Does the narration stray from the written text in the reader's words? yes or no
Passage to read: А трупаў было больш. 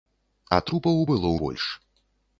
no